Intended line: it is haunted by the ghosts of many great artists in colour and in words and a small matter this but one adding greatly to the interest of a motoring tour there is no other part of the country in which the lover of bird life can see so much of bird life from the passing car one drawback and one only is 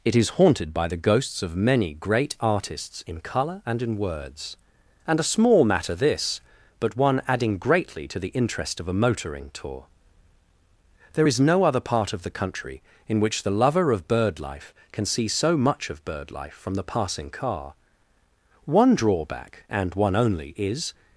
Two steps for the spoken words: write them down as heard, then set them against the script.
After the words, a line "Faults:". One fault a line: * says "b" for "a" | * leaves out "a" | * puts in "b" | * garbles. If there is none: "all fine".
it is haunted by the ghosts of many great artists in colour and in words and a small matter this but one adding greatly to the interest of a motoring tour there is no other part of the country in which the lover of bird life can see so much of bird life from the passing car one drawback and one only is
Faults:
all fine